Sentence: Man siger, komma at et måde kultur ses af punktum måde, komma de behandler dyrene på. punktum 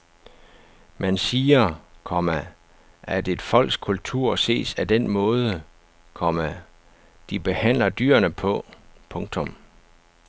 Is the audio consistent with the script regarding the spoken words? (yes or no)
no